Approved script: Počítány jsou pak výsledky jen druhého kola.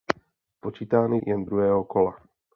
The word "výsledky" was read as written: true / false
false